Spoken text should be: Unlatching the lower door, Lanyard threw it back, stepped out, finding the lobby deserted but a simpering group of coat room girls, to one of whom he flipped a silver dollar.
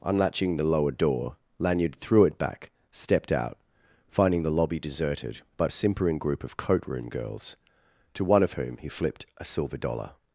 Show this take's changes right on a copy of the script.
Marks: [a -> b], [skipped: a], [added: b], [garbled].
Unlatching the lower door, Lanyard threw it back, stepped out, finding the lobby deserted but a simpering group of coat room girls, to one of whom he flipped a silver dollar.